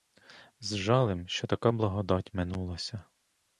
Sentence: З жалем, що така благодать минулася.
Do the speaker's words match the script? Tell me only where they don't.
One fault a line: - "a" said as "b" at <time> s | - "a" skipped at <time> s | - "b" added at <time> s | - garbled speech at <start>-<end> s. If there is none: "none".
none